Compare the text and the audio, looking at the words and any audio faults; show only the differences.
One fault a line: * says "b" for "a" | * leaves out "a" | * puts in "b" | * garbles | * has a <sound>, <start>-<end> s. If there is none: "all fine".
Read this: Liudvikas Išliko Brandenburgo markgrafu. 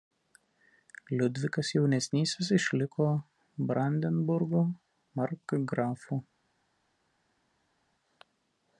* puts in "Jaunesnysis"